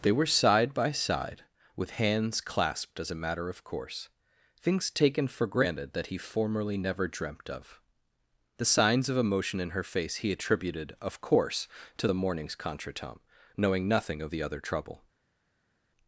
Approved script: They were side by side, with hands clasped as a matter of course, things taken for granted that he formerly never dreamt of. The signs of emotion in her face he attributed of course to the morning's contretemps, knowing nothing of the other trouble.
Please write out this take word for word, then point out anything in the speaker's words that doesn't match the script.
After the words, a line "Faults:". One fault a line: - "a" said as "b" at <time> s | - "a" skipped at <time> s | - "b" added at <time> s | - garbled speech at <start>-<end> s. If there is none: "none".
They were side by side, with hands clasped as a matter of course, things taken for granted that he formerly never dreamt of. The signs of emotion in her face he attributed of course to the morning's contretemps, knowing nothing of the other trouble.
Faults:
none